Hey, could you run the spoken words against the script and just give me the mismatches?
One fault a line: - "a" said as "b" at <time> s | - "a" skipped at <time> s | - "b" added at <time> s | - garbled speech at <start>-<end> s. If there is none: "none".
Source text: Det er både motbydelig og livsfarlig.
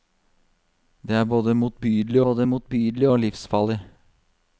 - "både motbydelig" added at 2.3 s